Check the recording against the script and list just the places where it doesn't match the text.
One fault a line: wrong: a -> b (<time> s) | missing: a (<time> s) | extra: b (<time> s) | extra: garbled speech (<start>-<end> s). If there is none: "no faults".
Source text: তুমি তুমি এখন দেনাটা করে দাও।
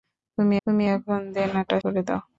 no faults